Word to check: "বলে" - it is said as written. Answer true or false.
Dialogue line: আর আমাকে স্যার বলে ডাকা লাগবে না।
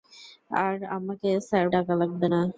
false